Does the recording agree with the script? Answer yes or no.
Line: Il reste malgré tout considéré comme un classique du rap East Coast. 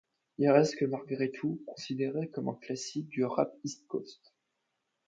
yes